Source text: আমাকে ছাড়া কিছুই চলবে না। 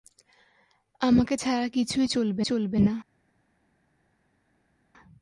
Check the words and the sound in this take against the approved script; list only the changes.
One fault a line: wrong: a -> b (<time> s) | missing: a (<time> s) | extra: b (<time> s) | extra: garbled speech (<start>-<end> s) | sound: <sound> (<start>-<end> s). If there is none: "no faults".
extra: চলবে (2.4 s)